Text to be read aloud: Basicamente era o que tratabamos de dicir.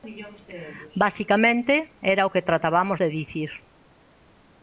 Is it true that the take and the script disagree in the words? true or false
false